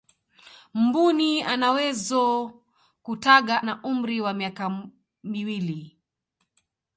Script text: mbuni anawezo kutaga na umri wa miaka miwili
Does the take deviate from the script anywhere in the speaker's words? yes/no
no